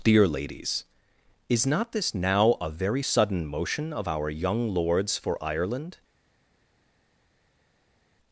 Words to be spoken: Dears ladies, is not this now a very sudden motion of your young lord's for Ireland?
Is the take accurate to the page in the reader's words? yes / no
no